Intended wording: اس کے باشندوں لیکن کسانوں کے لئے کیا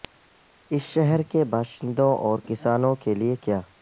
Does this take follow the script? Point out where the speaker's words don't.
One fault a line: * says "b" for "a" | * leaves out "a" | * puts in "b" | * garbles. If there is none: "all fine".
* puts in "شہر"
* says "اور" for "لیکن"